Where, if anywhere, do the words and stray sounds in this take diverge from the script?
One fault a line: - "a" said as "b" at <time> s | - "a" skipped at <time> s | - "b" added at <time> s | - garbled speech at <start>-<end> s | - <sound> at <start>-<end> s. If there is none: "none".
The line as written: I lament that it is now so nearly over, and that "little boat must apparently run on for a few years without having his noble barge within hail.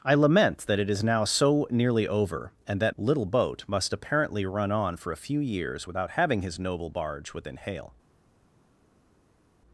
none